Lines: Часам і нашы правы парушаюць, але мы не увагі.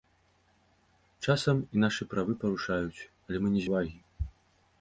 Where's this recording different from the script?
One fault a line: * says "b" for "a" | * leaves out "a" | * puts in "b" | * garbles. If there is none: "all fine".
all fine